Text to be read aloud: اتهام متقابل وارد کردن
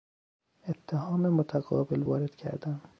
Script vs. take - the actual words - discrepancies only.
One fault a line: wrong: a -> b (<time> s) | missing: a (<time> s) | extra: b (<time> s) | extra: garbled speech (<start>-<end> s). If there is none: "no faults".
no faults